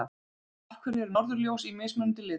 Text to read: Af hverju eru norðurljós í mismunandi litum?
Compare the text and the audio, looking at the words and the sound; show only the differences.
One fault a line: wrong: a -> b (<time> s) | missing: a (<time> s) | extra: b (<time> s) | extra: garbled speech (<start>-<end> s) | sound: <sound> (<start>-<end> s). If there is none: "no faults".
no faults